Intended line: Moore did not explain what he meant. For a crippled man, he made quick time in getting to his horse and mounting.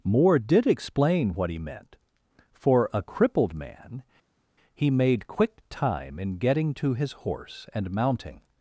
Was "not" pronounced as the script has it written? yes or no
no